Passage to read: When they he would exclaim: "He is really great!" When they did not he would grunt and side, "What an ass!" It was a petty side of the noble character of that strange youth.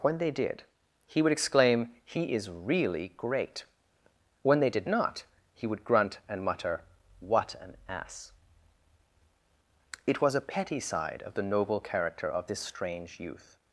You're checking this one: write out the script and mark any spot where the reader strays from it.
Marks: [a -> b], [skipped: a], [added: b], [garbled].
When they [added: did] he would exclaim: "He is really great!" When they did not he would grunt and [side, -> mutter] "What an ass!" It was a petty side of the noble character of [that -> this] strange youth.